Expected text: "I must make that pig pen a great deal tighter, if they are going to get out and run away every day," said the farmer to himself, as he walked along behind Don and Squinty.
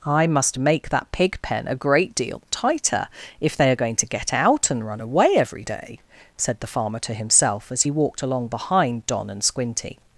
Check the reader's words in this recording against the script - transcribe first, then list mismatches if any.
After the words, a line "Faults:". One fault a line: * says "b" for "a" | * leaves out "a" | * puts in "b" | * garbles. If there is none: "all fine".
"I must make that pig pen a great deal tighter, if they are going to get out and run away every day," said the farmer to himself, as he walked along behind Don and Squinty.
Faults:
all fine